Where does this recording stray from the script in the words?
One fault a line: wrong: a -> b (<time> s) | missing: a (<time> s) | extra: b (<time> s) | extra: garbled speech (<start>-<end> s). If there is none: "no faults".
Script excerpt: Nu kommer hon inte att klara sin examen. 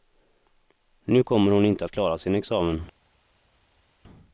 no faults